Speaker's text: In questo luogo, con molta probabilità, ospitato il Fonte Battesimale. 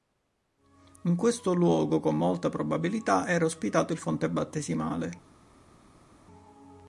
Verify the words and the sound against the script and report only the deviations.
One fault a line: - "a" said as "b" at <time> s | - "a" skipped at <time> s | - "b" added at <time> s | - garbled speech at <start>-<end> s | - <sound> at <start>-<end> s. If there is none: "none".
- "era" added at 3.3 s